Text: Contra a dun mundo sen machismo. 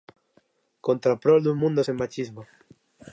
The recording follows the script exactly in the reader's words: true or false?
false